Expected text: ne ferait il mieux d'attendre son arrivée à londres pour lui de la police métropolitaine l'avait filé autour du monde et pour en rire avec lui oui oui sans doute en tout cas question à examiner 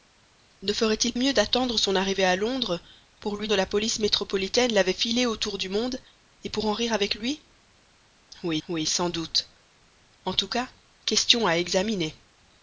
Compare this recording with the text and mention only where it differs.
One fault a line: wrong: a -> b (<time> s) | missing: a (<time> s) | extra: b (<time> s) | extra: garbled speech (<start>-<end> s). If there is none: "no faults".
no faults